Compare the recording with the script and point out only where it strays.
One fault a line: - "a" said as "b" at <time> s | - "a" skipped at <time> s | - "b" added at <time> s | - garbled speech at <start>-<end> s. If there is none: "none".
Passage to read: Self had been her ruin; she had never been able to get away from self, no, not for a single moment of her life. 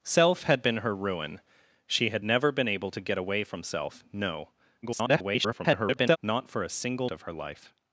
- garbled speech at 4.8-6.2 s
- "moment" skipped at 7.1 s